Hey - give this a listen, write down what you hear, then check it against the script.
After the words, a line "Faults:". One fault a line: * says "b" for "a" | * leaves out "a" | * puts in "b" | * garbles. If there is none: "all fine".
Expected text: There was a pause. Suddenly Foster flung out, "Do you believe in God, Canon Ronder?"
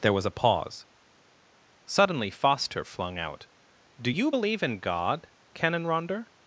There was a pause. Suddenly Foster flung out, "Do you believe in God, Canon Ronder?"
Faults:
all fine